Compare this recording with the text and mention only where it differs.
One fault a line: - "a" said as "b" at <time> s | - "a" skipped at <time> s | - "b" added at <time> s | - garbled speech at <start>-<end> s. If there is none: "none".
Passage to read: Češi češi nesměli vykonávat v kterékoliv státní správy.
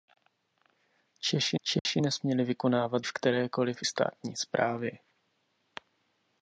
none